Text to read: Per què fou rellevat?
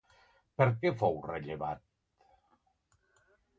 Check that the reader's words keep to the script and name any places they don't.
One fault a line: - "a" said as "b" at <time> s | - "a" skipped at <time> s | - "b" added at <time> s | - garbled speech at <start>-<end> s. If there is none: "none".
none